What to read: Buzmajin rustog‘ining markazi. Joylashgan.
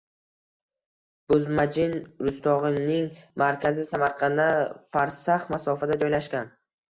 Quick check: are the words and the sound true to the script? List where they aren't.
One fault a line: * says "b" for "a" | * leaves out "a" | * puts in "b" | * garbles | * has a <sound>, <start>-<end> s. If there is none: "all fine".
* puts in "Samarqanddan farsax masofada"